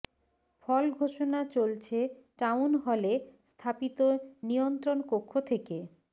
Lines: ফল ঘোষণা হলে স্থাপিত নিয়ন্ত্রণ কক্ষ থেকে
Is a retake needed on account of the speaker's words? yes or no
yes